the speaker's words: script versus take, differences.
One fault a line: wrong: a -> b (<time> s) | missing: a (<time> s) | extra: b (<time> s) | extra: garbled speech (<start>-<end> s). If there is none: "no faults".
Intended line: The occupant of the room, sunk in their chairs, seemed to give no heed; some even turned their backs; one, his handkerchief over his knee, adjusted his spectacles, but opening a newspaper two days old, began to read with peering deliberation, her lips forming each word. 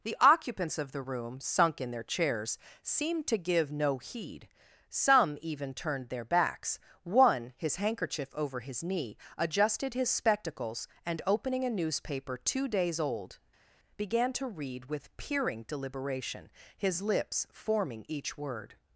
wrong: occupant -> occupants (0.2 s)
wrong: but -> and (11.0 s)
wrong: her -> his (16.7 s)